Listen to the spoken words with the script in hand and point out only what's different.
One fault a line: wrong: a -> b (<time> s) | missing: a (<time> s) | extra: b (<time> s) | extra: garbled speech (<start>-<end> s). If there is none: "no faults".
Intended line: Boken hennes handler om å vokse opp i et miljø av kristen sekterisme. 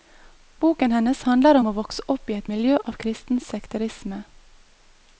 no faults